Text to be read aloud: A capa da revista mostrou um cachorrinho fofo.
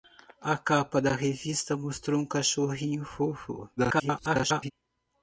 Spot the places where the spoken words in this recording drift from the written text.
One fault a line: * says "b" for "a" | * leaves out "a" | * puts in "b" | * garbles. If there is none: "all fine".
* garbles